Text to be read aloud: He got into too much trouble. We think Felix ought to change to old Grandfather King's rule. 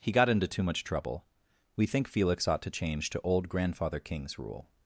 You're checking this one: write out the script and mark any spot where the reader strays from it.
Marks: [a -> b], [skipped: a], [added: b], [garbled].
He got into too much trouble. We think Felix ought to change to old Grandfather King's rule.